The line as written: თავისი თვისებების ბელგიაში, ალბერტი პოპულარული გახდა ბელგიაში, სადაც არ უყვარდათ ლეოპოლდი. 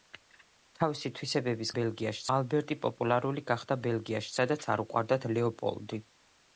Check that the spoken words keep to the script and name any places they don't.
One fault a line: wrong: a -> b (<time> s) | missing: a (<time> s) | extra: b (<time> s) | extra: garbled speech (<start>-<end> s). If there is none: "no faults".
no faults